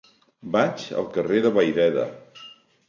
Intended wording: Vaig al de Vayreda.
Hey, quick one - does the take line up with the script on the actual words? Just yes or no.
no